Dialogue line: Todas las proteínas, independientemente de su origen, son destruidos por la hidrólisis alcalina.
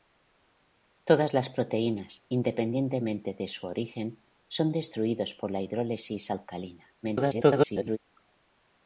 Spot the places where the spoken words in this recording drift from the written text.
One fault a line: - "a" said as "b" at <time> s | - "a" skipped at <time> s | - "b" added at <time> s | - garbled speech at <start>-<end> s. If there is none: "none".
- garbled speech at 7.0-8.0 s